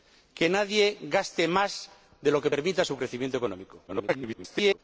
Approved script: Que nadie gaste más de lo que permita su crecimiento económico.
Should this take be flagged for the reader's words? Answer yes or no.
yes